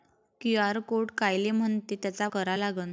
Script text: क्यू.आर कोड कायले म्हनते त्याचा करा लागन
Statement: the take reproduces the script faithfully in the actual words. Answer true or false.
true